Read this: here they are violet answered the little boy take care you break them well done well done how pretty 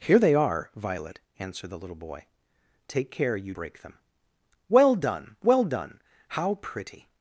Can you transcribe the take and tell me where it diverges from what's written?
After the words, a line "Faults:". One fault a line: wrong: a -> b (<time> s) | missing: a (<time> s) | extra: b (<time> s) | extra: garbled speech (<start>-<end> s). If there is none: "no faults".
here they are violet answered the little boy take care you break them well done well done how pretty
Faults:
no faults